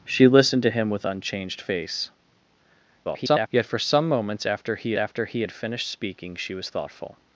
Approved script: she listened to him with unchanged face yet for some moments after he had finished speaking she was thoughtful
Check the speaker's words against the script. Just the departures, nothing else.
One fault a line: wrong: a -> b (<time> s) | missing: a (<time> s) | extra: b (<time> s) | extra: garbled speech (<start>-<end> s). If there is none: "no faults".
extra: garbled speech (3.0-3.5 s)
extra: after he (5.0 s)